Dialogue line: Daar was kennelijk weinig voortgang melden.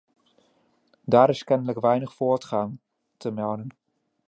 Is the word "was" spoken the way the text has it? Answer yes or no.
no